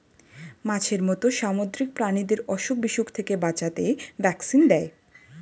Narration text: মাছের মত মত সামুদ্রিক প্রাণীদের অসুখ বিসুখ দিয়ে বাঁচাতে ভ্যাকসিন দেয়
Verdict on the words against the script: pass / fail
fail